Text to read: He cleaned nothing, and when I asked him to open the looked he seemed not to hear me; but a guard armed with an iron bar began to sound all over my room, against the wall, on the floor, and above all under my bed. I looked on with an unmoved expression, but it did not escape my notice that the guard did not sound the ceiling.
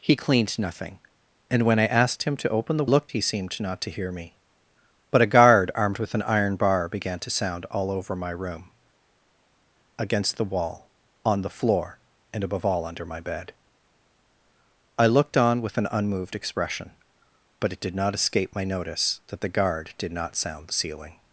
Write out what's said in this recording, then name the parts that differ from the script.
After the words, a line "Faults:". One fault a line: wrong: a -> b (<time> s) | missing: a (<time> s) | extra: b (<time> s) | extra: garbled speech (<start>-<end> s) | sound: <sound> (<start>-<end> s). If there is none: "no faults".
He cleaned nothing, and when I asked him to open the looked he seemed not to hear me; but a guard armed with an iron bar began to sound all over my room, against the wall, on the floor, and above all under my bed. I looked on with an unmoved expression, but it did not escape my notice that the guard did not sound the ceiling.
Faults:
no faults